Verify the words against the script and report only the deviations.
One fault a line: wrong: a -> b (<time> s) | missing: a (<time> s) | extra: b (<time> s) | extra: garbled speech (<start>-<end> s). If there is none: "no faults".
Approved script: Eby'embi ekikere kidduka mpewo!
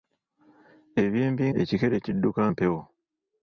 no faults